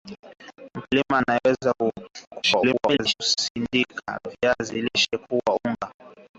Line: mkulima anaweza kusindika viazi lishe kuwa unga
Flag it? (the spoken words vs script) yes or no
yes